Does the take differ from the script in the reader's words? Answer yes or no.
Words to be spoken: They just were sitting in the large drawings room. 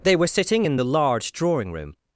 yes